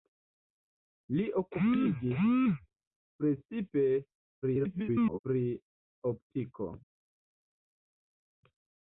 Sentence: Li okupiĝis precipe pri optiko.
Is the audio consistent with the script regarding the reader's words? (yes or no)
no